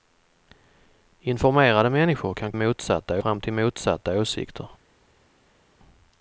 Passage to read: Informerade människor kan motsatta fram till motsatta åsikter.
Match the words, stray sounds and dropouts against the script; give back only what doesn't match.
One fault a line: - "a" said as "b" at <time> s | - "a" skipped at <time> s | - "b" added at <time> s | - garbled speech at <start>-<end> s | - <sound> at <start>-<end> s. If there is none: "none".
none